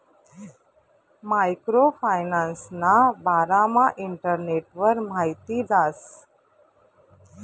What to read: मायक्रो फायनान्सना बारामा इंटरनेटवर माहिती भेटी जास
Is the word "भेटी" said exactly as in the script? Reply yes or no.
no